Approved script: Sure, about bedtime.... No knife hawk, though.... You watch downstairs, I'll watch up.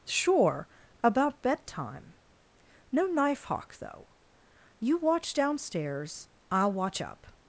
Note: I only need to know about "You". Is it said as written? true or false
true